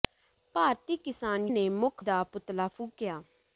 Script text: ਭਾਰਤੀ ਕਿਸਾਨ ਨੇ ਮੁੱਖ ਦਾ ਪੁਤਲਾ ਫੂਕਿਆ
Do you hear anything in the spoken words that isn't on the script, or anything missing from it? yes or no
no